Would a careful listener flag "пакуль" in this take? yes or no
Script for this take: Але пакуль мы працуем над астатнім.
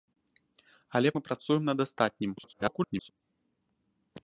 yes